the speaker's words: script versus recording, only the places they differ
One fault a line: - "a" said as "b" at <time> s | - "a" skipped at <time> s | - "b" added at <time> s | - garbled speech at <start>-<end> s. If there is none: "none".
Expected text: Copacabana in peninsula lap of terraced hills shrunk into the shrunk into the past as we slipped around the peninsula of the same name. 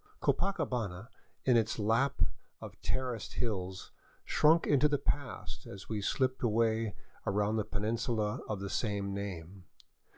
- "peninsula" said as "its" at 1.6 s
- "shrunk into the" skipped at 5.0 s
- "away" added at 6.4 s